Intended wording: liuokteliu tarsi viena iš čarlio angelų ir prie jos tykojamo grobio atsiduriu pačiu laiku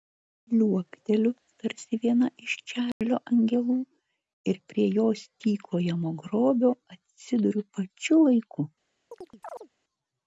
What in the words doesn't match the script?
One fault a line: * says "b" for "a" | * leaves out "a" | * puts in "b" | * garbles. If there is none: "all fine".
all fine